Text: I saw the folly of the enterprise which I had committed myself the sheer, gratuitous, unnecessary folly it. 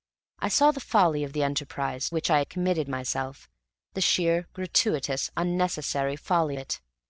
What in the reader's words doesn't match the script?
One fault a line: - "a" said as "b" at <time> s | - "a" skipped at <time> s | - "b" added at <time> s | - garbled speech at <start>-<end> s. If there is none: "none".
none